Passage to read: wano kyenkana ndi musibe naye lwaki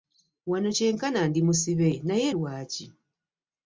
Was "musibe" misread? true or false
false